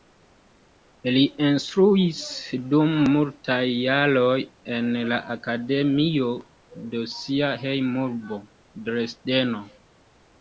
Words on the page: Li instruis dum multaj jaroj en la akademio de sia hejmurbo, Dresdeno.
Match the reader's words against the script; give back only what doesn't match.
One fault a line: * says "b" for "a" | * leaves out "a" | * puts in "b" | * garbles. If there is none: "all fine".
all fine